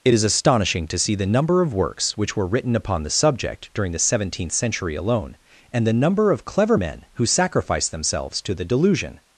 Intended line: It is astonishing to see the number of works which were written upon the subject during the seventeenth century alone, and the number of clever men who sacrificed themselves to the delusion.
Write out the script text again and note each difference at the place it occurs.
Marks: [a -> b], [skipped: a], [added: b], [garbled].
It is astonishing to see the number of works which were written upon the subject during the seventeenth century alone, and the number of clever men who sacrificed themselves to the delusion.